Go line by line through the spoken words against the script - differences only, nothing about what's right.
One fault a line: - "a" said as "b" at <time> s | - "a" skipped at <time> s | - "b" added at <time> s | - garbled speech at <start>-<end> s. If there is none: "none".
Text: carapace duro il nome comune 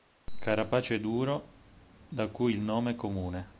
- "da cui" added at 2.1 s